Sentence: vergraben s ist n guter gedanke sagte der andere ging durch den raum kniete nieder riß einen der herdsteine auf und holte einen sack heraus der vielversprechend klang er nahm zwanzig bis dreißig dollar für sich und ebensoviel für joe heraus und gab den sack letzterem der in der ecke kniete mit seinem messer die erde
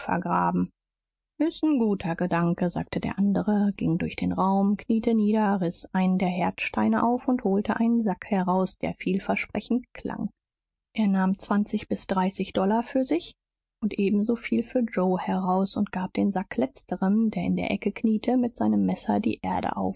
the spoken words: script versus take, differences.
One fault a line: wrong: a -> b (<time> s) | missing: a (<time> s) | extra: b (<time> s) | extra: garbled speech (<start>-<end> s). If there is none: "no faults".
no faults